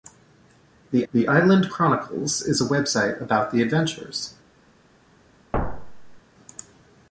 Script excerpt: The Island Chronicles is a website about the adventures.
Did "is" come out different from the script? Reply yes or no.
no